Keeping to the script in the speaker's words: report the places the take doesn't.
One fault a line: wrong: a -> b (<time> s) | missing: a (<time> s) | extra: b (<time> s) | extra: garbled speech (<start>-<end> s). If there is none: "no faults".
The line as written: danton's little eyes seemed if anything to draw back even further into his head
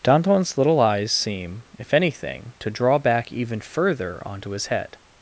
wrong: seemed -> seem (1.1 s)
wrong: into -> onto (4.3 s)